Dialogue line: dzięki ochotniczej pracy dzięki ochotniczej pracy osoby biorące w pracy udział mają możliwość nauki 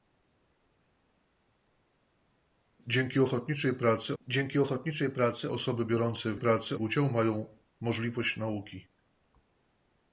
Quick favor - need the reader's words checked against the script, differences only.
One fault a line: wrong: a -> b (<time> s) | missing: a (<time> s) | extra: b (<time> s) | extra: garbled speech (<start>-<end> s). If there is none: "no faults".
no faults